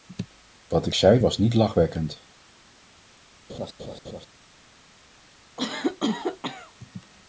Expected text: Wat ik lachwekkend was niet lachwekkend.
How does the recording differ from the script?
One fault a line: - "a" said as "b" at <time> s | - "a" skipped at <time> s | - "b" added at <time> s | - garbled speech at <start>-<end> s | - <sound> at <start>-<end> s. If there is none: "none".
- "lachwekkend" said as "zei" at 0.9 s
- laugh at 3.5-4.3 s
- cough at 5.6-6.7 s